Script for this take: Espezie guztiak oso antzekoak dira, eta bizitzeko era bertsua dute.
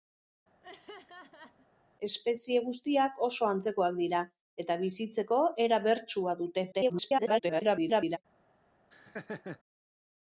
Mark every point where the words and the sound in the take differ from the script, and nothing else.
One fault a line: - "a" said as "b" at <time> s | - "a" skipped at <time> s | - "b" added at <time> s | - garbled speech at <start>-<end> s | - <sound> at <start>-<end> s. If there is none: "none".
- laugh at 0.6-1.7 s
- garbled speech at 6.7-8.2 s
- laugh at 8.9-9.6 s